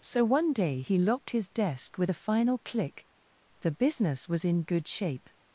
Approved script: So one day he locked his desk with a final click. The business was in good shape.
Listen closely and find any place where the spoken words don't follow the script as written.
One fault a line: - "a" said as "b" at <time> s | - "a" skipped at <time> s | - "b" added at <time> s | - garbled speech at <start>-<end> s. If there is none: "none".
none